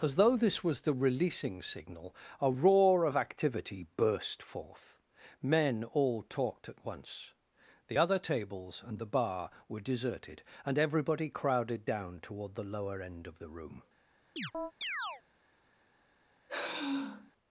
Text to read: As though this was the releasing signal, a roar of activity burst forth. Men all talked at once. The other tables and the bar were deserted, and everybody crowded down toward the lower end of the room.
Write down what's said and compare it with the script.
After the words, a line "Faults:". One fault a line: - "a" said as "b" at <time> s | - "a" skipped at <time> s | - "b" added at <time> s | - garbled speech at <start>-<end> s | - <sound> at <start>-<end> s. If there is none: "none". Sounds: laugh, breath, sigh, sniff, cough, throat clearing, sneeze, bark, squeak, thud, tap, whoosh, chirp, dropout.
As though this was the releasing signal, a roar of activity burst forth. Men all talked at once. The other tables and the bar were deserted, and everybody crowded down toward the lower end of the room.
Faults:
- chirp at 14.4-15.2 s
- sigh at 16.5-17.3 s